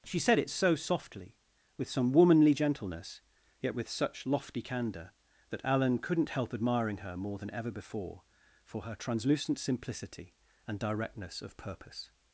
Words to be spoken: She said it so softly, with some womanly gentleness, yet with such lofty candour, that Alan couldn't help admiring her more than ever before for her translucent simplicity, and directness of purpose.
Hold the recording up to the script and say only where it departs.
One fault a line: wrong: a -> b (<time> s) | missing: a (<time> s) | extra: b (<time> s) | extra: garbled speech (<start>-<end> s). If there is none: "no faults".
no faults